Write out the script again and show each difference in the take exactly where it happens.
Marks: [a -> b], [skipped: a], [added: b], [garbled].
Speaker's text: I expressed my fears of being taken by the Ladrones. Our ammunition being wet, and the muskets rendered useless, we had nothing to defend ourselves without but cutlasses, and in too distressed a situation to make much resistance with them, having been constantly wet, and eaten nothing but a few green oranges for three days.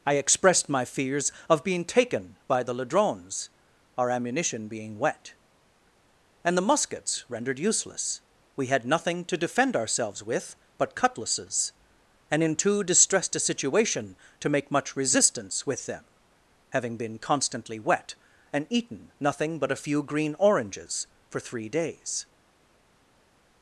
I expressed my fears of being taken by the Ladrones. Our ammunition being wet, and the muskets rendered useless, we had nothing to defend ourselves [without -> with] but cutlasses, and in too distressed a situation to make much resistance with them, having been constantly wet, and eaten nothing but a few green oranges for three days.